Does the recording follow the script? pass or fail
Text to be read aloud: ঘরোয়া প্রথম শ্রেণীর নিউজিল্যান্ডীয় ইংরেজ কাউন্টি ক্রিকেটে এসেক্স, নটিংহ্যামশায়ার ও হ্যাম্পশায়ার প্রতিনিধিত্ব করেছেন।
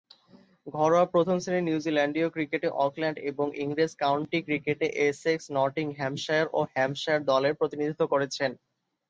fail